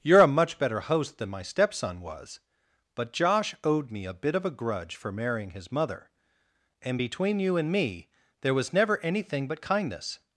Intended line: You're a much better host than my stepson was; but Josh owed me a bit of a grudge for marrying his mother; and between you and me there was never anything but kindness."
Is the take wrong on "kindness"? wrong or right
right